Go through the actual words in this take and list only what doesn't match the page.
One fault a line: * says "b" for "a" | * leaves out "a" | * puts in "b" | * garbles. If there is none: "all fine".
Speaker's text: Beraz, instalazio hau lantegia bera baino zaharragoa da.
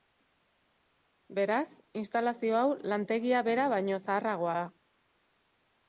all fine